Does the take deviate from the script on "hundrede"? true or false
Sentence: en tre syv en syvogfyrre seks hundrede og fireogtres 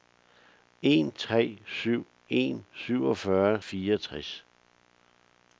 true